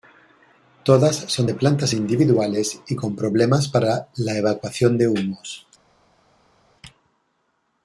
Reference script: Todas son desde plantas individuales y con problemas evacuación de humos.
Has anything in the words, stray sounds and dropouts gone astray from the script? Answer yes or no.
yes